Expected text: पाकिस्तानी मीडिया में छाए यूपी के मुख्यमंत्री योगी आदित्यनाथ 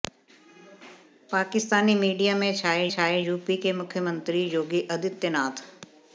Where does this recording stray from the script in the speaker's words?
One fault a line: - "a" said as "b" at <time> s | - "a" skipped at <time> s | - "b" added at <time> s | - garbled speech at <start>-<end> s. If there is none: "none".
- "छाए" added at 2.9 s